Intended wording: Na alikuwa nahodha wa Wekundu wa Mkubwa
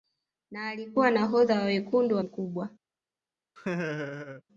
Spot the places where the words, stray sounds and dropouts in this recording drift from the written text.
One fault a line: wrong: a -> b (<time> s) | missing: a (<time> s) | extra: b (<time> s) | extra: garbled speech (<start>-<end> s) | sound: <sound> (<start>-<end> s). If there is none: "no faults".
sound: laugh (3.6-4.4 s)